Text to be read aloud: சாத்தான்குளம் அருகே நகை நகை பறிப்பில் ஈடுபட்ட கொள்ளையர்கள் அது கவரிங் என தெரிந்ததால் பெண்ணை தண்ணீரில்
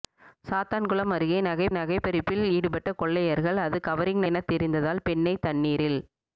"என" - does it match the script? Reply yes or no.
yes